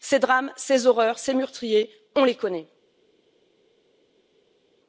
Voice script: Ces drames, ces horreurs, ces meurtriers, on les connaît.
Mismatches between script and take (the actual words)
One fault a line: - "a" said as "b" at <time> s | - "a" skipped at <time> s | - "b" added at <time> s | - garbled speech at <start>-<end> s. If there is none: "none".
none